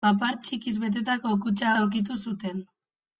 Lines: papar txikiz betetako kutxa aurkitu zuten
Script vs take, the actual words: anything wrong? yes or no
no